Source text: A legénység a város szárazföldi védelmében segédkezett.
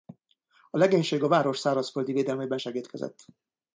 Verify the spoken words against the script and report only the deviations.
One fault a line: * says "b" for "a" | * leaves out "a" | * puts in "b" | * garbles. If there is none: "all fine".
all fine